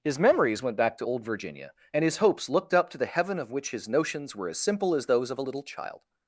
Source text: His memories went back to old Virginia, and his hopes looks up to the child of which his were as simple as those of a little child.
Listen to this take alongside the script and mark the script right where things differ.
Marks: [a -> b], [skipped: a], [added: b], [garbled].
His memories went back to old Virginia, and his hopes [looks -> looked] up to the [child -> heaven] of which his [added: notions] were as simple as those of a little child.